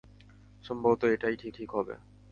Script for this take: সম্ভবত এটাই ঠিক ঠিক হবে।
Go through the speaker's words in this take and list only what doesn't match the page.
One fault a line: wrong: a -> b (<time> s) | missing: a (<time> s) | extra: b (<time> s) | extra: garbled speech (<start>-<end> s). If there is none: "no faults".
no faults